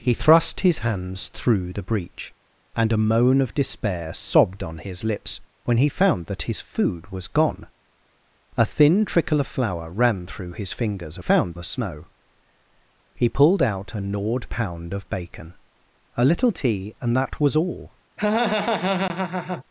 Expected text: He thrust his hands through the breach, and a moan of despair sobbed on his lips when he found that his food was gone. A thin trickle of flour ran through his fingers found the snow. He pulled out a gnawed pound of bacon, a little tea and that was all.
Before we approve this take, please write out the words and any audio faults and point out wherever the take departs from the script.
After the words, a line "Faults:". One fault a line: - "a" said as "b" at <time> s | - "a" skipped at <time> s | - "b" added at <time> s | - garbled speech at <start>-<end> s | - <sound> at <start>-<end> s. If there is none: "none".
He thrust his hands through the breach, and a moan of despair sobbed on his lips when he found that his food was gone. A thin trickle of flour ran through his fingers found the snow. He pulled out a gnawed pound of bacon, a little tea and that was all.
Faults:
- laugh at 18.2-19.6 s